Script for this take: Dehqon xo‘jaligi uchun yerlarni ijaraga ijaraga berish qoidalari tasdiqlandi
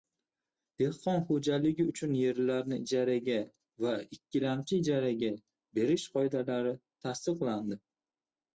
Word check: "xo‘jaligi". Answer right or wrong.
right